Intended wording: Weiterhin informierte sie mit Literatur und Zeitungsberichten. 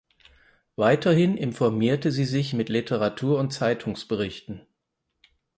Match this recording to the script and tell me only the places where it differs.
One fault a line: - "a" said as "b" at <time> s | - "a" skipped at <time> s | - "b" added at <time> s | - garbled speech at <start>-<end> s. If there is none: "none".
- "sich" added at 2.2 s